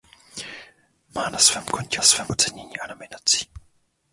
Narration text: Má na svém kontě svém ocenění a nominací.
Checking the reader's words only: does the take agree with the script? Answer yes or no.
yes